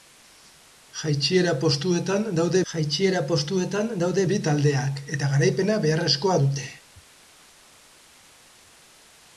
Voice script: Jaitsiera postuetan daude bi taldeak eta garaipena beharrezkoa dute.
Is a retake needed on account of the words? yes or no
yes